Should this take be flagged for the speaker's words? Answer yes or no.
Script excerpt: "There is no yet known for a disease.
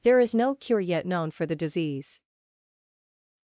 yes